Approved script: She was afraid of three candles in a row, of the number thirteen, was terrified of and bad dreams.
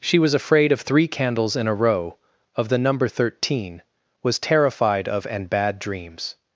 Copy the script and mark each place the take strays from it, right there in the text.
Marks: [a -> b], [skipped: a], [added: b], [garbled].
She was afraid of three candles in a row, of the number thirteen, was terrified of and bad dreams.